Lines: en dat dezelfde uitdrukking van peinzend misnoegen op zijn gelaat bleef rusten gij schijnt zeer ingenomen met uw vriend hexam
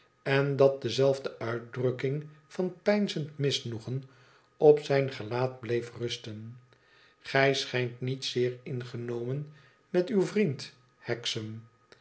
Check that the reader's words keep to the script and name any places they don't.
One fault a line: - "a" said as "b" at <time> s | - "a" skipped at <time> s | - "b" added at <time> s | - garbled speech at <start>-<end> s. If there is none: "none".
- "niet" added at 8.0 s